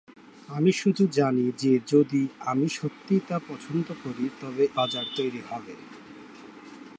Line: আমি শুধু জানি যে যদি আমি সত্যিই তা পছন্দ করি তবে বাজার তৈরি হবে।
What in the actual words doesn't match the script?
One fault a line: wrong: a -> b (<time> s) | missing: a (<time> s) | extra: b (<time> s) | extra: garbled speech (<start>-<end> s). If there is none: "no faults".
no faults